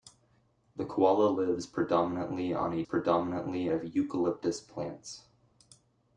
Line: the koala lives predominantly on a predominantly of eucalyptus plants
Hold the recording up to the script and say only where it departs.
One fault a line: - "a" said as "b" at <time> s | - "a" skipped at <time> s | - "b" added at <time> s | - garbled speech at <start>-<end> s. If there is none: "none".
none